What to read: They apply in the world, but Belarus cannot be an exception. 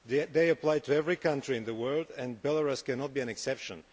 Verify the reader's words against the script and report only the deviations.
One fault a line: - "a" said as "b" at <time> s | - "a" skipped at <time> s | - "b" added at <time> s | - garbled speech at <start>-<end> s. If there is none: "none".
- "to every country" added at 0.8 s
- "but" said as "and" at 2.2 s